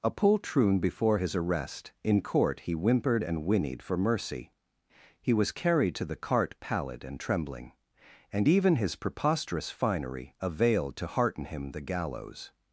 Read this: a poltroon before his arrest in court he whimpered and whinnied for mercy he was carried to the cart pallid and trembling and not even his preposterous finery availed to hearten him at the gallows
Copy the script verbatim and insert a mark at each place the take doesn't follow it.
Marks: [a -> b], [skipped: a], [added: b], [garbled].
a poltroon before his arrest in court he whimpered and whinnied for mercy he was carried to the cart pallid and trembling and [skipped: not] even his preposterous finery availed to hearten him [skipped: at] the gallows